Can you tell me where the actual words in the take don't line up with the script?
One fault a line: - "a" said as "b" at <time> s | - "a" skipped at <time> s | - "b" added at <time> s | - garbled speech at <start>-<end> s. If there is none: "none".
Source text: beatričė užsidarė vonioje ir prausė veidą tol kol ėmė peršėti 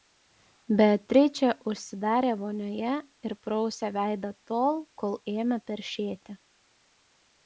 none